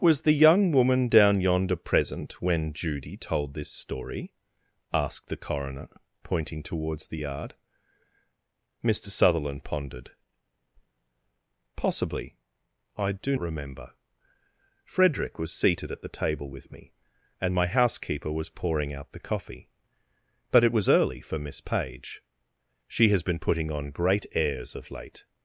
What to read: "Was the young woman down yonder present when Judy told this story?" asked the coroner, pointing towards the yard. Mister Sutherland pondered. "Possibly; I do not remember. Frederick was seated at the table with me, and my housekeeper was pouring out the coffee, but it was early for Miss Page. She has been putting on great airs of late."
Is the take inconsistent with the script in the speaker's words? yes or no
yes